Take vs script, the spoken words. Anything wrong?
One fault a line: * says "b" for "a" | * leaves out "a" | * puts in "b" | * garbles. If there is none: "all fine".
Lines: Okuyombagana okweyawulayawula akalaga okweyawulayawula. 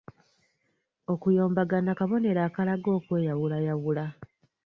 * says "kabonero" for "okweyawulayawula"